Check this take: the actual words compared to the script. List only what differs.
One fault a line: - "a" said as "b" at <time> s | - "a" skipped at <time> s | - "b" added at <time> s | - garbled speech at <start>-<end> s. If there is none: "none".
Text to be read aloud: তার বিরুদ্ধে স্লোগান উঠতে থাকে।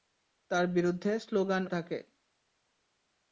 - "উঠতে" skipped at 1.6 s